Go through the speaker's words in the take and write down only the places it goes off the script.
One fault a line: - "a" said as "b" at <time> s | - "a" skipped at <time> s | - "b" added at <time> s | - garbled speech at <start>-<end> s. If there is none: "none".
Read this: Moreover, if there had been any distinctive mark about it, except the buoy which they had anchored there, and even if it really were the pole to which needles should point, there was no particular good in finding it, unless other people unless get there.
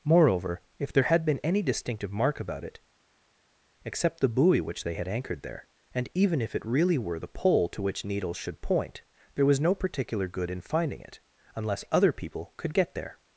- "unless" said as "could" at 12.6 s